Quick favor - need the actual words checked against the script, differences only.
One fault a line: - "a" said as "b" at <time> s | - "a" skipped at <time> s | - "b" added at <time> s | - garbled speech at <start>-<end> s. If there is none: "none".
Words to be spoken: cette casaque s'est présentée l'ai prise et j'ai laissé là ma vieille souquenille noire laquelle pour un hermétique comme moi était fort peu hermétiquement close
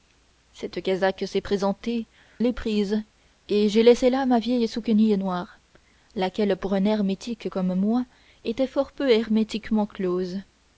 none